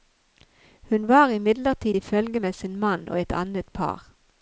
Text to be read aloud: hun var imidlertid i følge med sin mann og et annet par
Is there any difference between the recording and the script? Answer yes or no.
no